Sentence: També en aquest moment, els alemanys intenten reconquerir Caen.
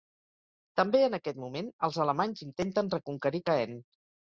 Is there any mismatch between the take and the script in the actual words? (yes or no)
no